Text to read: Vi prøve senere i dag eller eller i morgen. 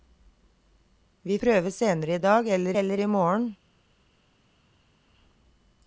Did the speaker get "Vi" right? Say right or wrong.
right